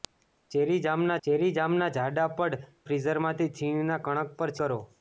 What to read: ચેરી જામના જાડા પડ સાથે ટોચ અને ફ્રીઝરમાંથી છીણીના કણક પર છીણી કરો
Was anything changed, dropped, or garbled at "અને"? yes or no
yes